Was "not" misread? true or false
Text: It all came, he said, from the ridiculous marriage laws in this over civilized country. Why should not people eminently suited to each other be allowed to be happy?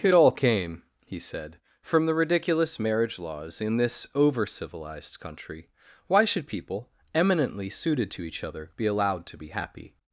true